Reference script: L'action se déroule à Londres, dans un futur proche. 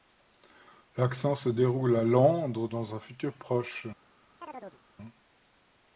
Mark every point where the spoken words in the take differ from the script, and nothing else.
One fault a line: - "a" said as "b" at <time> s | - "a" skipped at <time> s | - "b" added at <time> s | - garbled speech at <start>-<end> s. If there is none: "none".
none